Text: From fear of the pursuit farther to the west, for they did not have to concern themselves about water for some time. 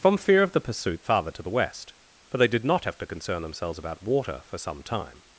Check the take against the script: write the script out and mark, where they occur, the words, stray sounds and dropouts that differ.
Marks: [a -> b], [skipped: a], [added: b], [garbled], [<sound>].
From fear of the pursuit farther to the west, for they did not have to concern themselves about water for some time.